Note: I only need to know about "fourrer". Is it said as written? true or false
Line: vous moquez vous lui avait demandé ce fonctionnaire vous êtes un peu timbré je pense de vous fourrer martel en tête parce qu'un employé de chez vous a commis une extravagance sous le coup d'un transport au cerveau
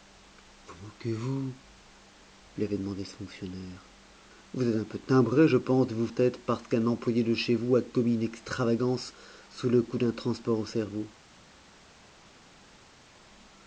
false